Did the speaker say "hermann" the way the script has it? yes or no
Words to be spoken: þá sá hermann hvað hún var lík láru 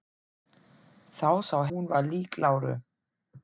no